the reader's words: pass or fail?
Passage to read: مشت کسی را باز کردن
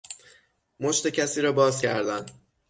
pass